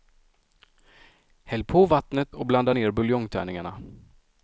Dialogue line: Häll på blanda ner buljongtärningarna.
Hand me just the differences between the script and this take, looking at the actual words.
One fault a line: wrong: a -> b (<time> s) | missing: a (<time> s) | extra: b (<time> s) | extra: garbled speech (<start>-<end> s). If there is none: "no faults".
extra: vattnet och (1.8 s)